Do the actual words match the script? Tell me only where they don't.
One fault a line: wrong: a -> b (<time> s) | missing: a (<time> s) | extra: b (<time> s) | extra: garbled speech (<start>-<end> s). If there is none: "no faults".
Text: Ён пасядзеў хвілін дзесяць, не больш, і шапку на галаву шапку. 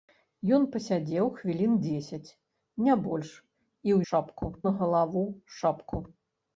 no faults